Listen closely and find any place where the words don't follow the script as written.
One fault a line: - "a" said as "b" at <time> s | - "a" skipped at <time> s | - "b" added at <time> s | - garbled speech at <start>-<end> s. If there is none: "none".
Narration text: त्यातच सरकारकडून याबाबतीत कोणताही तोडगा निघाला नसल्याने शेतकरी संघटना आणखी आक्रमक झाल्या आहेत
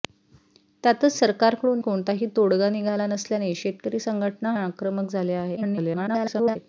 - "याबाबतीत" skipped at 1.8 s
- "आणखी" skipped at 4.6 s
- garbled speech at 5.6-6.6 s